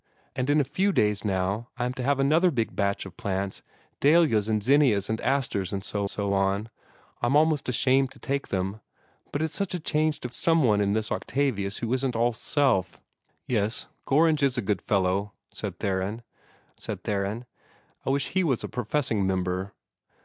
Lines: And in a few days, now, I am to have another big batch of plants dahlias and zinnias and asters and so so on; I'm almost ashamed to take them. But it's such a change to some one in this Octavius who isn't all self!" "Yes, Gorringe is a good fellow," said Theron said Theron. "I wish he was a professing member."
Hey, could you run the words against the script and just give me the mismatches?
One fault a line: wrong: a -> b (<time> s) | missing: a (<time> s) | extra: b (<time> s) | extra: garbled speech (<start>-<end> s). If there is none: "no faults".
no faults